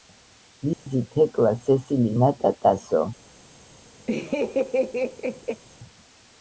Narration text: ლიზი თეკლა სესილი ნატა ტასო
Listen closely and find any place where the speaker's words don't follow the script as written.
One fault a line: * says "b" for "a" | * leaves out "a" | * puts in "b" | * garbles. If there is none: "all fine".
all fine